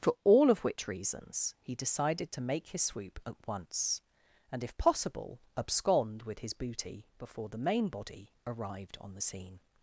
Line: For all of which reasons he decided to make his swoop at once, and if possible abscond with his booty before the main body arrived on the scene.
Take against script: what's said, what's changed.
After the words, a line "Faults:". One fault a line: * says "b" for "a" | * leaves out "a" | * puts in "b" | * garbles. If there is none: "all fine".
For all of which reasons he decided to make his swoop at once, and if possible abscond with his booty before the main body arrived on the scene.
Faults:
all fine